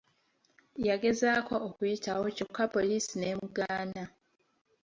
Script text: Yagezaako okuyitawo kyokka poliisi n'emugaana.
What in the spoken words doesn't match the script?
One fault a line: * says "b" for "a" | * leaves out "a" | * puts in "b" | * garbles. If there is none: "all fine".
all fine